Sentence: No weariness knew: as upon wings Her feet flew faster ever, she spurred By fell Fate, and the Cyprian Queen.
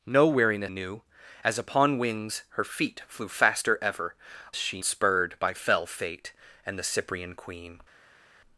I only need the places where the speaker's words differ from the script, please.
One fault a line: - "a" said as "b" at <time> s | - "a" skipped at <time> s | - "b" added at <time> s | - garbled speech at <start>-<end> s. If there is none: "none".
none